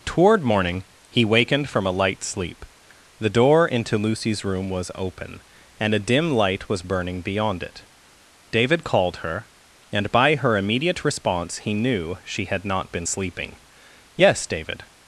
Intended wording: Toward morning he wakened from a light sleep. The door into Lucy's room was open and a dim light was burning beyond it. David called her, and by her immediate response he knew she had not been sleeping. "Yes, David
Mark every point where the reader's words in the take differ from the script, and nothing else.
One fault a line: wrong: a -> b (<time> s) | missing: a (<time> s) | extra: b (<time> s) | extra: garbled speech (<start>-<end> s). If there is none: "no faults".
no faults